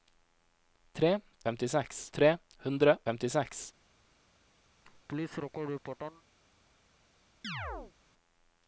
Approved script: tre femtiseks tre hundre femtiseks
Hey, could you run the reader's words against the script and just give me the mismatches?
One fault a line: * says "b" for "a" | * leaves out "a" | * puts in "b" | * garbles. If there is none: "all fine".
all fine